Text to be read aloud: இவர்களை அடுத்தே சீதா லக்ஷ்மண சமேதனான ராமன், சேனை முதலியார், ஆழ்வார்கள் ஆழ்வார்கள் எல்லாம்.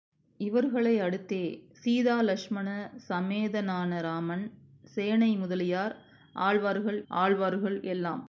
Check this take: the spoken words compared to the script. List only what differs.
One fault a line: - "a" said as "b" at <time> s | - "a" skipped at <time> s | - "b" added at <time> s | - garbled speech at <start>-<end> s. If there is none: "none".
none